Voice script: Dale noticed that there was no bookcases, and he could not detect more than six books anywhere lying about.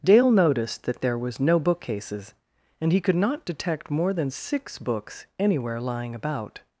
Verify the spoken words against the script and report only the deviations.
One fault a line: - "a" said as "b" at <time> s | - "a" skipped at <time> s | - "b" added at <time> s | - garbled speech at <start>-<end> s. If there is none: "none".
none